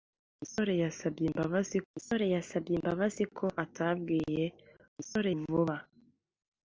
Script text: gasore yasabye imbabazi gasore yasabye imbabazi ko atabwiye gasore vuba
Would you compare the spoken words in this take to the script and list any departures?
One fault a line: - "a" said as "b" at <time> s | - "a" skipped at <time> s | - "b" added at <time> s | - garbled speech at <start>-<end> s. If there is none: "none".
none